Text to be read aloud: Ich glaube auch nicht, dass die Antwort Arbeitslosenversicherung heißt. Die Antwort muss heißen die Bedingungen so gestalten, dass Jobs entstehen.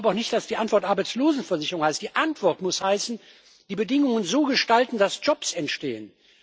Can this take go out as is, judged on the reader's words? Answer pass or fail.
pass